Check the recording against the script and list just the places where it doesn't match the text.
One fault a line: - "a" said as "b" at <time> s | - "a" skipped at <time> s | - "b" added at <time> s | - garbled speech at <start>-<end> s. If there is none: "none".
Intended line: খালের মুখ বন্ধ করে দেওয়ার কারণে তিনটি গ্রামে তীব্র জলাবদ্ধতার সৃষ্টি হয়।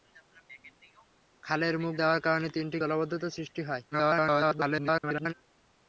- "বন্ধ করে" skipped at 1.9 s
- "গ্রামে তীব্র" skipped at 2.8 s
- garbled speech at 3.9-5.3 s